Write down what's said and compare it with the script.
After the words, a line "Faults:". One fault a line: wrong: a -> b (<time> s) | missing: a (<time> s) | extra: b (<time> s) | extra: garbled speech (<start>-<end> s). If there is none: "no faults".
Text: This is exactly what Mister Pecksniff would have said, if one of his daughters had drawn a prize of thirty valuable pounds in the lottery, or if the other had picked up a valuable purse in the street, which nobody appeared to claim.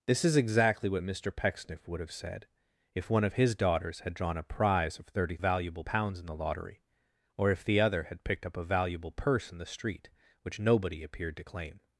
This is exactly what Mister Pecksniff would have said, if one of his daughters had drawn a prize of thirty valuable pounds in the lottery, or if the other had picked up a valuable purse in the street, which nobody appeared to claim.
Faults:
no faults